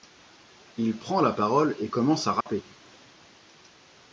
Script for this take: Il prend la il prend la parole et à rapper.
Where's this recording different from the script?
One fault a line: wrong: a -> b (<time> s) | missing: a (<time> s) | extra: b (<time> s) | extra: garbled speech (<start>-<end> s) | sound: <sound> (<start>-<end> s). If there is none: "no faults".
missing: il prend la (1.3 s)
extra: commence (1.9 s)
sound: dropout (2.4-2.5 s)